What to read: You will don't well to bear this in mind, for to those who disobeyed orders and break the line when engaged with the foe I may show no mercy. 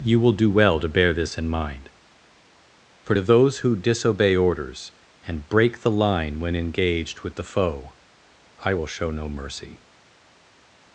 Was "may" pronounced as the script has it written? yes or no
no